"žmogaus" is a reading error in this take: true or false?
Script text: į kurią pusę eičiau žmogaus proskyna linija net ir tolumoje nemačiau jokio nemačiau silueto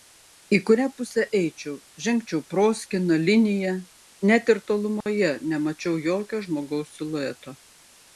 true